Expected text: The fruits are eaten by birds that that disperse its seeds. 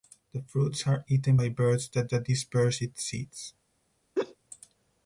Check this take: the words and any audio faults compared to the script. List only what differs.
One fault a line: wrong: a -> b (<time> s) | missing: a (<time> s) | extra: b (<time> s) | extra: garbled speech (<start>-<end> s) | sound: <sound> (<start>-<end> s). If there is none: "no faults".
sound: laugh (4.2-4.4 s)